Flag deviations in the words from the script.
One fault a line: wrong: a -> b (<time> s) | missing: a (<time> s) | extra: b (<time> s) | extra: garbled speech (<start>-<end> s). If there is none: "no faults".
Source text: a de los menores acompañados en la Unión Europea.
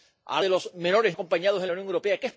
no faults